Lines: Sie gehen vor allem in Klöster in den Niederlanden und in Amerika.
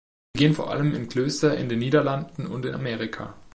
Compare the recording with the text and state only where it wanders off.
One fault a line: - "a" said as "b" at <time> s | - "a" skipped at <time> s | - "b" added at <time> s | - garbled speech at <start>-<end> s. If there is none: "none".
none